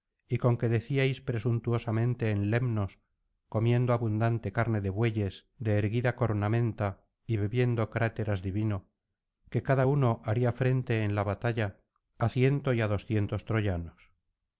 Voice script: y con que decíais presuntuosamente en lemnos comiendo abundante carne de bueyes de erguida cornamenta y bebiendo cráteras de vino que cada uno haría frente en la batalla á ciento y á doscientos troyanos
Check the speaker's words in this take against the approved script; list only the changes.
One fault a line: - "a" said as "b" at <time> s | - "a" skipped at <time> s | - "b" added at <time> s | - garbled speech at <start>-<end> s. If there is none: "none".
none